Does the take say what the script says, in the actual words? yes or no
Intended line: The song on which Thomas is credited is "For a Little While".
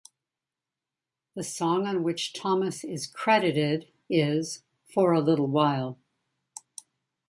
yes